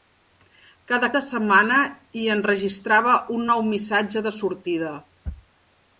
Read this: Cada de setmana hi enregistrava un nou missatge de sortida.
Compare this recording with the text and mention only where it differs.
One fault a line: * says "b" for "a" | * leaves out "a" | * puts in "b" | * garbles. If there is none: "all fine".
all fine